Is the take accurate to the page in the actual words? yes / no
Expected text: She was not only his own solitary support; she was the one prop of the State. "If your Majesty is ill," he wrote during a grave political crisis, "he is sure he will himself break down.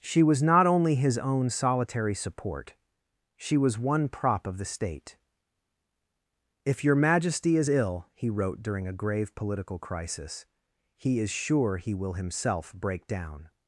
no